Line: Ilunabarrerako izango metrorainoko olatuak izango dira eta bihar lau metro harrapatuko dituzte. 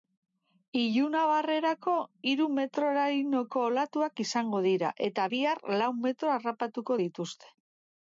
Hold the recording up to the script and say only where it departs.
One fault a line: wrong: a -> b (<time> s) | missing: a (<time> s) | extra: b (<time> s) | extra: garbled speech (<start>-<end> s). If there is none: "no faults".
wrong: izango -> hiru (2.3 s)